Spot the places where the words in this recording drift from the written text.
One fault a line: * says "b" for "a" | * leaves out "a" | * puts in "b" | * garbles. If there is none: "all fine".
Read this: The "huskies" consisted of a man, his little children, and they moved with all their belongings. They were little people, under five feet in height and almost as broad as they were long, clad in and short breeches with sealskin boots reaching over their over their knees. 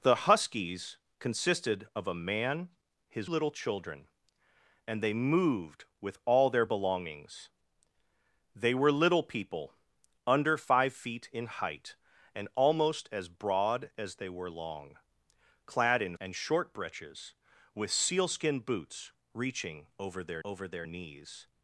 all fine